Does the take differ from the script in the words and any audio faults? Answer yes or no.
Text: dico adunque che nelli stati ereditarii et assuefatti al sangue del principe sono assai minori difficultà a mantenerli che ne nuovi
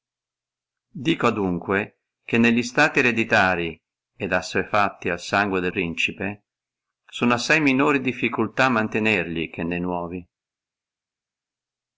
no